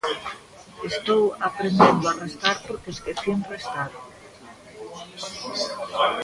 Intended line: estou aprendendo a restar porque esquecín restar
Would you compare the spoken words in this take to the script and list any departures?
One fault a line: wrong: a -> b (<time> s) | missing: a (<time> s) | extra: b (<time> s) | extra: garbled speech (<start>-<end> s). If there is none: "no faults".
no faults